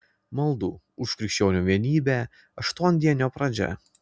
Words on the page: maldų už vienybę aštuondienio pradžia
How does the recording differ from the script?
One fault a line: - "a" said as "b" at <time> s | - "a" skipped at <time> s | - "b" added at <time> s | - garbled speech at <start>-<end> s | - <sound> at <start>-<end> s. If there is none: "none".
- "krikščionių" added at 1.2 s